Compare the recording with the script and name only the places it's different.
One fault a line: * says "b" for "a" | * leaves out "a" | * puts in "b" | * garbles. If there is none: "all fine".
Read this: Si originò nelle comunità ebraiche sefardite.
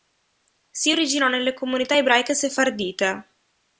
all fine